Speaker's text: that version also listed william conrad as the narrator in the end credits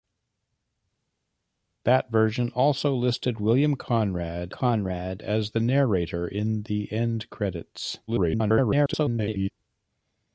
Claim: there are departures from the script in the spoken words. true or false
true